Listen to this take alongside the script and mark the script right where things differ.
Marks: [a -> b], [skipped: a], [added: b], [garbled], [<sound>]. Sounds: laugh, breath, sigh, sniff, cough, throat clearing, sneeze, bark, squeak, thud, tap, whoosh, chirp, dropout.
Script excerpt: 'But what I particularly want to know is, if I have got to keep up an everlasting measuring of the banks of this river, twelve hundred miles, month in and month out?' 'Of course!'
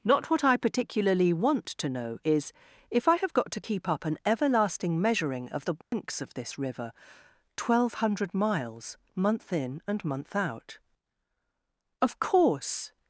['But -> Not] what I particularly want to know is, if I have got to keep up an everlasting measuring of the banks [dropout] of this river, twelve hundred miles, month in and month out?' 'Of course!'